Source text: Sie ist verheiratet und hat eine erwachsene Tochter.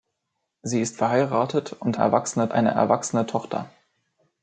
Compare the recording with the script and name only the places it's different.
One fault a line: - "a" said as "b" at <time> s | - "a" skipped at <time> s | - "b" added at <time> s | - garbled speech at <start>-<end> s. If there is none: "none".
- "hat" said as "erwachsene" at 1.9 s